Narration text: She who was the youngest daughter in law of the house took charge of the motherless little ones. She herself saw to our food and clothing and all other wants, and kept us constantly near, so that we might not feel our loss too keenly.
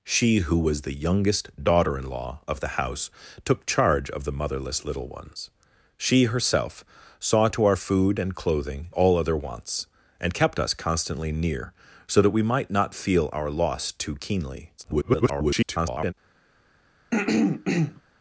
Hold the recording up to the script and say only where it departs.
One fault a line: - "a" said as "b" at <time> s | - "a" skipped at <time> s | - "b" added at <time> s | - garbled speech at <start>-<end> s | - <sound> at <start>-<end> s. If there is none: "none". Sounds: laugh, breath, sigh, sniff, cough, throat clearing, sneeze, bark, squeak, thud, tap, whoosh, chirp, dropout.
- "and" skipped at 8.9 s
- garbled speech at 14.8-16.1 s
- throat clearing at 17.1-18.0 s